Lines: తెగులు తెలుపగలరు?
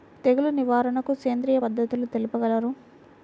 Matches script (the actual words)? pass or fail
fail